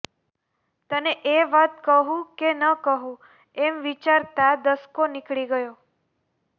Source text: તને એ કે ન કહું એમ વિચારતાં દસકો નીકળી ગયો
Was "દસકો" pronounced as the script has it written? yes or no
yes